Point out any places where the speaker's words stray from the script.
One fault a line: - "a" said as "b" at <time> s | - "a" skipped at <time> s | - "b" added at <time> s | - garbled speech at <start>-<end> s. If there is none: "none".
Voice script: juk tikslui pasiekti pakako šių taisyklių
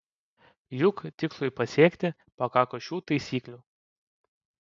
none